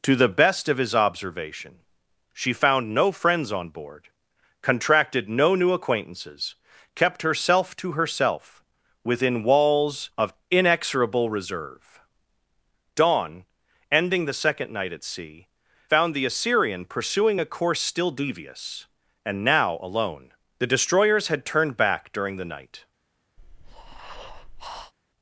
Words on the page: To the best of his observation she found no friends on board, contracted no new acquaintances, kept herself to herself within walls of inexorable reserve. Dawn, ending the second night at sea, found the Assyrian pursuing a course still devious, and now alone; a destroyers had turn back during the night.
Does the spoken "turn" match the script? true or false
false